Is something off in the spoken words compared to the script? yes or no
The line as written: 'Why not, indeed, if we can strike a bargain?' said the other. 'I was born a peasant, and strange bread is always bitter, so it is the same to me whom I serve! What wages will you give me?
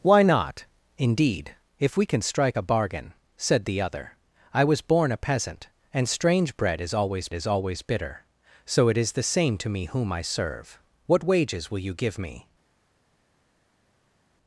yes